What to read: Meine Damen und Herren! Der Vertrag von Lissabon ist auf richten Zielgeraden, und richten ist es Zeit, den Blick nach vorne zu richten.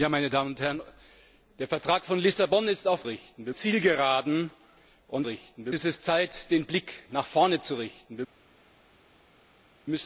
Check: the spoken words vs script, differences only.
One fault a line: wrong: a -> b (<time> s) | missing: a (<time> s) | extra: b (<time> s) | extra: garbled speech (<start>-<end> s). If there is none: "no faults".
no faults